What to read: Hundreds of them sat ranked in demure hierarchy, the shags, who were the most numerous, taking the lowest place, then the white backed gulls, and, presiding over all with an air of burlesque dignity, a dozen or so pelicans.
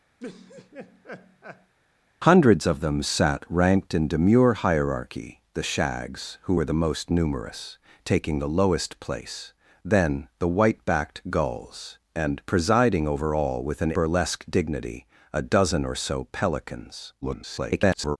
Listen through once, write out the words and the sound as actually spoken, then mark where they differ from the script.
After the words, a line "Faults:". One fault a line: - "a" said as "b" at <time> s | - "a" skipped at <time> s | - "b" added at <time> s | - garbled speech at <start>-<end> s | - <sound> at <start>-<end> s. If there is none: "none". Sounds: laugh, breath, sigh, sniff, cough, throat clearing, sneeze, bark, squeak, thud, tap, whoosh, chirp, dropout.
Hundreds of them sat ranked in demure hierarchy, the shags, who were the most numerous, taking the lowest place, then the white backed gulls, and, presiding over all with an burlesque dignity, a dozen or so pelicans. [garbled]
Faults:
- laugh at 0.2-1.7 s
- "air of" skipped at 13.9 s
- garbled speech at 17.2-18.2 s